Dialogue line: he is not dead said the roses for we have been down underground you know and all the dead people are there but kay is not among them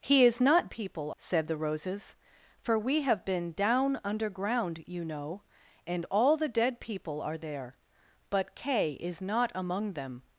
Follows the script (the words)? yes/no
no